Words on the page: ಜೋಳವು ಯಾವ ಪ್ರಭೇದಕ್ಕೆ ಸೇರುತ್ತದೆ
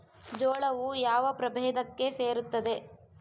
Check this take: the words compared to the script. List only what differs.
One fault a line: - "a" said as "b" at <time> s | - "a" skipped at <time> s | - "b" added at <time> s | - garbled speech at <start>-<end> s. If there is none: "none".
none